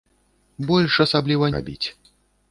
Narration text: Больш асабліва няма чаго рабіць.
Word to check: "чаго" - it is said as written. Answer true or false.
false